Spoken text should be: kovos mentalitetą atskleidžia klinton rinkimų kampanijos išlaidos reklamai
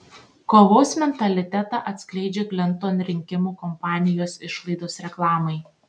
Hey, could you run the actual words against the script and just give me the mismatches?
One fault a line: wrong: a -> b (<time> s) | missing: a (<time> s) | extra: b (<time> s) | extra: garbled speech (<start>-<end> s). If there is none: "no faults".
no faults